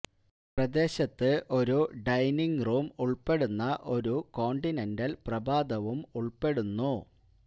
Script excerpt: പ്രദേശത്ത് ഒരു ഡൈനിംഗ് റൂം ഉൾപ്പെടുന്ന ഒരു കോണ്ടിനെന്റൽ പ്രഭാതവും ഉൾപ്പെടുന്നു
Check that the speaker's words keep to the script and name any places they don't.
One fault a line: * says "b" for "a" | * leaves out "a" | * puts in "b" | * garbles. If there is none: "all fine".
all fine